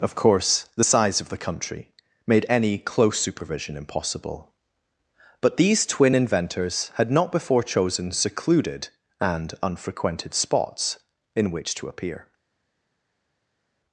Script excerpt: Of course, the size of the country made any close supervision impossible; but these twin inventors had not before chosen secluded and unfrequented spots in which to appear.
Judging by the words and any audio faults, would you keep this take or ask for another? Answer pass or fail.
pass